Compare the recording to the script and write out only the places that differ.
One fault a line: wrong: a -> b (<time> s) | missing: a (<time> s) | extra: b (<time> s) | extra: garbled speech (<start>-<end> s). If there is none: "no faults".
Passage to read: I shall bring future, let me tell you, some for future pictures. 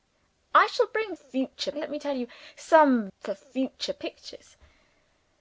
no faults